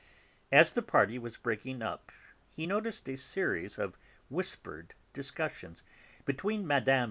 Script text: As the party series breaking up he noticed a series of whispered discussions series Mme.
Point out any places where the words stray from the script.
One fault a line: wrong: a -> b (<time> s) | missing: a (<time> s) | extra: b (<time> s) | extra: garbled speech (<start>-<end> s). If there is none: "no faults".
wrong: series -> was (1.2 s)
wrong: series -> between (6.2 s)